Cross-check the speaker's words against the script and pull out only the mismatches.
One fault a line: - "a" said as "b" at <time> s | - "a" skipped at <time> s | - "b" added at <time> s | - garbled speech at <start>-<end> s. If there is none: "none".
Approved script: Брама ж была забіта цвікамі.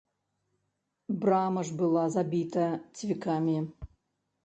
none